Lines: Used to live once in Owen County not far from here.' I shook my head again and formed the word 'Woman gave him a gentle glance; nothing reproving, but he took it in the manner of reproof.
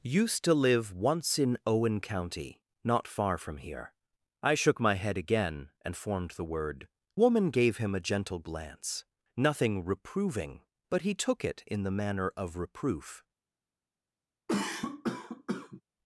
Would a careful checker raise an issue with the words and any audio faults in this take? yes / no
yes